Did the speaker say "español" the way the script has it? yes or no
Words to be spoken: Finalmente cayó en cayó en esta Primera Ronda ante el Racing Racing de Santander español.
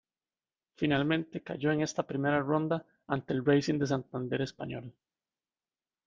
yes